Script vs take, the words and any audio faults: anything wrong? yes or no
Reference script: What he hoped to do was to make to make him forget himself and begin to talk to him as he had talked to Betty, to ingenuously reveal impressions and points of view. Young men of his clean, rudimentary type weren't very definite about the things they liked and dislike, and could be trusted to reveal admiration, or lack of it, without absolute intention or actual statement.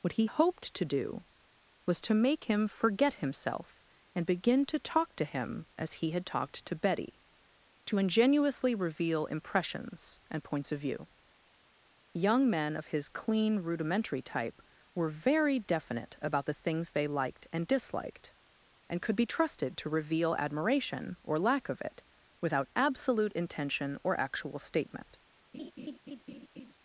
yes